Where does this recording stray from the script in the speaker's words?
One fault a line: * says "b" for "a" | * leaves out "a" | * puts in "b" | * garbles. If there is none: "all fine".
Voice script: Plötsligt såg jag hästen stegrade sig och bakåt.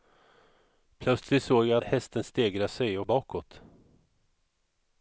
all fine